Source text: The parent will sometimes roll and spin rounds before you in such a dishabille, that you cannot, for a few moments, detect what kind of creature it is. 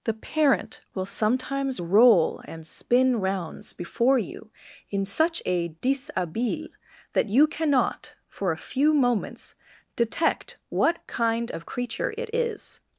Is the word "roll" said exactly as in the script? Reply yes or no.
yes